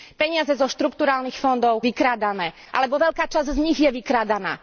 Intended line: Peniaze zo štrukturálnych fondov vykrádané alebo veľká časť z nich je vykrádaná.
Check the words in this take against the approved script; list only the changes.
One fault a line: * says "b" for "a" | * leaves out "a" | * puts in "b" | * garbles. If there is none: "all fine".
all fine